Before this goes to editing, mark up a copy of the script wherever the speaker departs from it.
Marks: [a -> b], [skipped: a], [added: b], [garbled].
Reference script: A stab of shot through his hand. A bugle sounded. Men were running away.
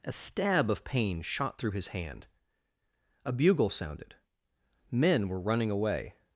A stab of [added: pain] shot through his hand. A bugle sounded. Men were running away.